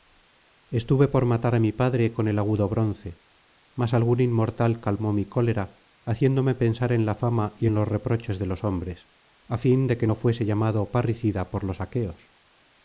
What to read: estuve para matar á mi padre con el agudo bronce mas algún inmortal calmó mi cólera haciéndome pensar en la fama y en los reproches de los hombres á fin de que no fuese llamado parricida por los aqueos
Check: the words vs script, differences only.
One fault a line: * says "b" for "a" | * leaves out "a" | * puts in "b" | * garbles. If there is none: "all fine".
* says "por" for "para"